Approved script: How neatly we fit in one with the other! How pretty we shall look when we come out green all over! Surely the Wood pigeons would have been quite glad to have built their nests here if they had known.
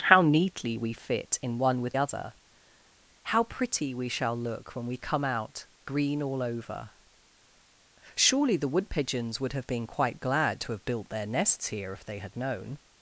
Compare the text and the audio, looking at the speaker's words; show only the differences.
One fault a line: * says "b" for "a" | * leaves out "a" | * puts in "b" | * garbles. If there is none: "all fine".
* leaves out "the"